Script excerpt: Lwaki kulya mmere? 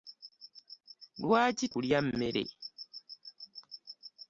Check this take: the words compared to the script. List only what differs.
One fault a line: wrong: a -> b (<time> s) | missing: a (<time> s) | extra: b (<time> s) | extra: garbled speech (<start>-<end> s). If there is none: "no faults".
no faults